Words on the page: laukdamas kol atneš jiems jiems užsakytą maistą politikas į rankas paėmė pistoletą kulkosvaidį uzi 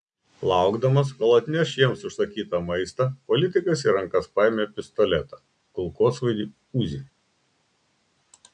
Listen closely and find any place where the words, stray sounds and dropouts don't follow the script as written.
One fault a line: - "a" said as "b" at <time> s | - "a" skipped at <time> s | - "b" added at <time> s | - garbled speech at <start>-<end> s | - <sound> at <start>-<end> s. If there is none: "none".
- "jiems" skipped at 2.0 s